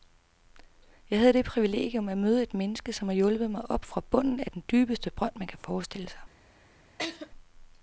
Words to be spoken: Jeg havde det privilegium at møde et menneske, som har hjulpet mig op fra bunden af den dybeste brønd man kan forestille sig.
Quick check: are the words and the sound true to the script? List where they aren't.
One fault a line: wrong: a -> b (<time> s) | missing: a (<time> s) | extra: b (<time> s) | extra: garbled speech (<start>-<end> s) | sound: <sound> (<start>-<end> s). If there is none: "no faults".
sound: laugh (7.0-7.3 s)